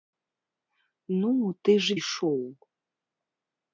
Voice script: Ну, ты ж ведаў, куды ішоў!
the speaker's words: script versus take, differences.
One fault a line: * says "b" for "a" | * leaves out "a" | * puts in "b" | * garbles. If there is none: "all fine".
* leaves out "ведаў куды"